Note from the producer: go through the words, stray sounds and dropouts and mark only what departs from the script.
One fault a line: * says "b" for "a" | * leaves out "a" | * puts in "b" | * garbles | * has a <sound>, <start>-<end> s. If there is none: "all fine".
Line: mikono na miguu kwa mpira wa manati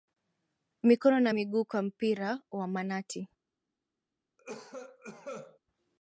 * has a cough, 4.4-5.6 s